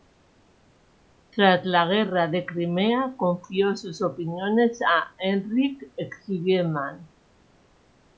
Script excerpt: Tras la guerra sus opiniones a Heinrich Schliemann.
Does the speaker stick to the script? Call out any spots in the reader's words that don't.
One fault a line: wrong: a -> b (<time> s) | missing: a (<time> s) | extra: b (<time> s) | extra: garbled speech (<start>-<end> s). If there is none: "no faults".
extra: de Crimea confió (2.3 s)